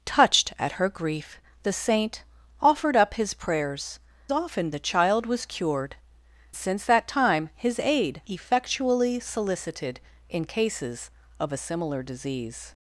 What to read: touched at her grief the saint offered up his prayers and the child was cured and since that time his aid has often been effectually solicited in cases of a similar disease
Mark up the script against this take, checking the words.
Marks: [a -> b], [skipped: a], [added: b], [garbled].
touched at her grief the saint offered up his prayers [and -> often] the child was cured [skipped: and] since that time his aid [skipped: has often been] effectually solicited in cases of a similar disease